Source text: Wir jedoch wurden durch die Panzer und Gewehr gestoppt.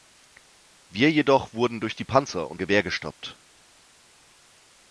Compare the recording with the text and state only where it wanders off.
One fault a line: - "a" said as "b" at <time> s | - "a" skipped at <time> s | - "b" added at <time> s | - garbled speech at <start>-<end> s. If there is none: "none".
none